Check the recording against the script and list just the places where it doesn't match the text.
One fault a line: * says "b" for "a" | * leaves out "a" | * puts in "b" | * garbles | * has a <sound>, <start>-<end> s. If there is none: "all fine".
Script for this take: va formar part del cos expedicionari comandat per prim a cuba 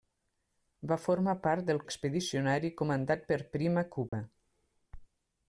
* leaves out "cos"
* has a dropout, 4.1-4.1 s